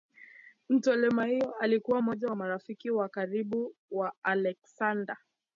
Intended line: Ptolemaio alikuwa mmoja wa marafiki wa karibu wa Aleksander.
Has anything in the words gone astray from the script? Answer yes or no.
no